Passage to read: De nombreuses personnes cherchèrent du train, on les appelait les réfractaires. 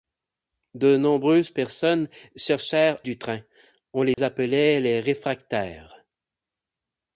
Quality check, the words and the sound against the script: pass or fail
fail